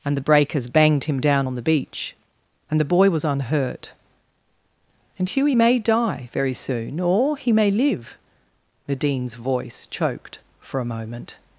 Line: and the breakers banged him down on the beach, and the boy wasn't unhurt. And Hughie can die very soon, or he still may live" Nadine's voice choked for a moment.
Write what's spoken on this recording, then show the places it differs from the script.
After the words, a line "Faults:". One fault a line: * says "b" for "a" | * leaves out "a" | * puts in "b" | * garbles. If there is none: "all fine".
and the breakers banged him down on the beach, and the boy was unhurt. And Hughie may die very soon, or he may live" Nadine's voice choked for a moment.
Faults:
* says "was" for "wasn't"
* says "may" for "can"
* leaves out "still"